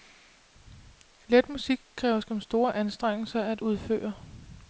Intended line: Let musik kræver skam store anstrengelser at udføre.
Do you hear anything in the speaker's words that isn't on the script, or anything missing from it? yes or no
no